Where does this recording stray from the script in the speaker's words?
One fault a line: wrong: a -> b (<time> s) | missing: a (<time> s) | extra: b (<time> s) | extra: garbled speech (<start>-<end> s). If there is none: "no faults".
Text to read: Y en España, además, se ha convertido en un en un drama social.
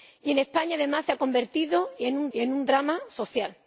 no faults